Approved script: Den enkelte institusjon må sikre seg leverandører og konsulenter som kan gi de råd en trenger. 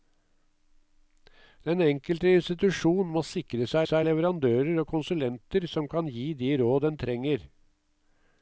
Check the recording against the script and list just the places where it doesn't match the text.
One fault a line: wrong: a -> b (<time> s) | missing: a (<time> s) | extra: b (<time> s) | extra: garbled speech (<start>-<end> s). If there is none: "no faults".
extra: seg (3.9 s)